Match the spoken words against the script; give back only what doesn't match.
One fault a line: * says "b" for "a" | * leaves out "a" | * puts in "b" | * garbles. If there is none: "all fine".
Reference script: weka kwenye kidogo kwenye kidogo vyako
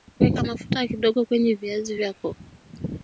* says "mafuta" for "kwenye"
* says "viazi" for "kidogo"